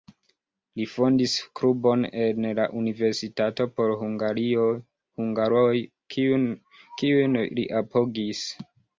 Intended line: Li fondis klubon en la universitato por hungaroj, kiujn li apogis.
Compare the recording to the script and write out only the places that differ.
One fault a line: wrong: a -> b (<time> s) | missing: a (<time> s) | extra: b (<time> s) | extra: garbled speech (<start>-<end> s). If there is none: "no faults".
no faults